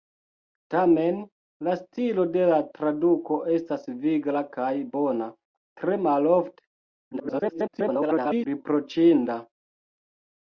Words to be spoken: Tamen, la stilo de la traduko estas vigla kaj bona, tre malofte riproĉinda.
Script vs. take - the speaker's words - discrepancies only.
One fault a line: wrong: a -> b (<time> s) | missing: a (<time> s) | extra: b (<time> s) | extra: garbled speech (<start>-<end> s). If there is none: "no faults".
extra: garbled speech (7.1-8.5 s)